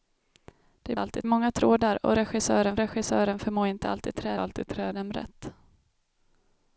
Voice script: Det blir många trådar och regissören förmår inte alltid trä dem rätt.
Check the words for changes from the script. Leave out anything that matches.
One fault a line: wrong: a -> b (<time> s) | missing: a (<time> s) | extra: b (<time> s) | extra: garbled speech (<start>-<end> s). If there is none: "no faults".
wrong: blir -> alltid (1.0 s)
extra: regissören (2.8 s)
extra: alltid trä (4.4 s)